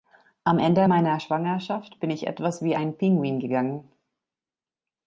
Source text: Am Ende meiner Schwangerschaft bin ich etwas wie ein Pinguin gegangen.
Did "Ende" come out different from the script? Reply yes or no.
no